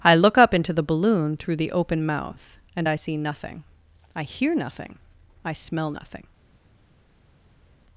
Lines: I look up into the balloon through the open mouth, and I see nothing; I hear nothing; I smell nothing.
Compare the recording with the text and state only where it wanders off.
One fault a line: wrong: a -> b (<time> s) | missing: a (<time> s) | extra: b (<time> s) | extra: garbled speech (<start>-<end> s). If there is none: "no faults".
no faults